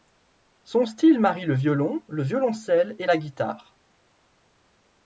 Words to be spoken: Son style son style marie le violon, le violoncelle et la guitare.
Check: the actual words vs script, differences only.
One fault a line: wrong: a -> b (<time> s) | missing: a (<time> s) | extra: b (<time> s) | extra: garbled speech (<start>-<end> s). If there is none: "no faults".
missing: son style (1.2 s)